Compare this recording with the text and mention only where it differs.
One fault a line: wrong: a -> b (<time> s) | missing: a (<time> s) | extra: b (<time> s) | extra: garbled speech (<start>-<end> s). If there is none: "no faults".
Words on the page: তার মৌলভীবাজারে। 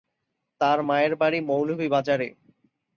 extra: মায়ের বাড়ি (0.8 s)